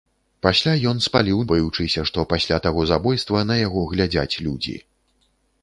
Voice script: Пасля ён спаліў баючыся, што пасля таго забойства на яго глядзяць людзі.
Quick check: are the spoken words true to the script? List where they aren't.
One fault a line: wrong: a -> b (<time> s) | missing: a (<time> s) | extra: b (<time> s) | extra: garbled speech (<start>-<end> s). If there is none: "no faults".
no faults